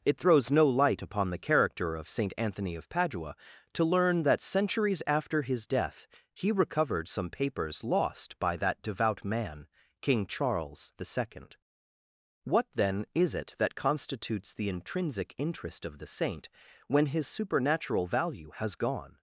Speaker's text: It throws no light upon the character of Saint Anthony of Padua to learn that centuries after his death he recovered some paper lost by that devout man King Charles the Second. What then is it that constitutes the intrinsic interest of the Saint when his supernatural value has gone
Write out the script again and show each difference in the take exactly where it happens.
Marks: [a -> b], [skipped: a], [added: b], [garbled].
It throws no light upon the character of Saint Anthony of Padua to learn that centuries after his death he recovered some [paper -> papers] lost by that devout man King Charles the Second. What then is it that constitutes the intrinsic interest of the Saint when his supernatural value has gone